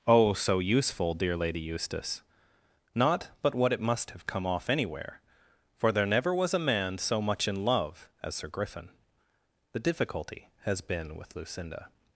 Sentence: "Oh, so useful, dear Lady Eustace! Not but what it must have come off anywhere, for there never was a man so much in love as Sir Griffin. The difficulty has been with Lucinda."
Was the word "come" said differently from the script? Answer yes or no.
no